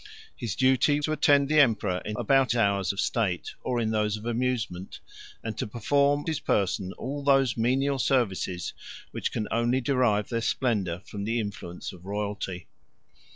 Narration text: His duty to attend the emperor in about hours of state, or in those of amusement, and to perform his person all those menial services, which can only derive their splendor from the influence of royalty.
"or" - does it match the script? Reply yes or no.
yes